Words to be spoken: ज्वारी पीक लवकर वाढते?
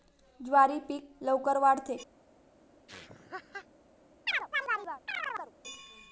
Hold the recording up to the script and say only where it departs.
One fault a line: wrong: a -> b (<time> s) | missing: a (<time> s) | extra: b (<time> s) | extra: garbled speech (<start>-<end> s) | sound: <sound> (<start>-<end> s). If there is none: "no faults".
sound: laugh (2.9-3.7 s)
sound: chirp (4.3-5.5 s)